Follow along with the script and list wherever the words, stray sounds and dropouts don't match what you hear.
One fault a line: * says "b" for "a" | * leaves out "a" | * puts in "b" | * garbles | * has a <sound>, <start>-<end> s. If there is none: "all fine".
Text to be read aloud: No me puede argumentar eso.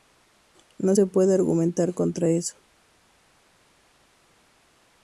* says "se" for "me"
* puts in "contra"